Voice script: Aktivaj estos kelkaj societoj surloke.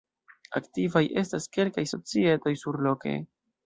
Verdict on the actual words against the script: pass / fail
fail